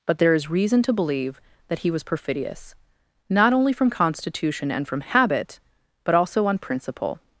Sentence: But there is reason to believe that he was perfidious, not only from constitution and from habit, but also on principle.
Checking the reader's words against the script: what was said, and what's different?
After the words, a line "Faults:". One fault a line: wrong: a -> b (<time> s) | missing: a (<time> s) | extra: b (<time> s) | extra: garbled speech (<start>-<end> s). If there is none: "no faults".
But there is reason to believe that he was perfidious, not only from constitution and from habit, but also on principle.
Faults:
no faults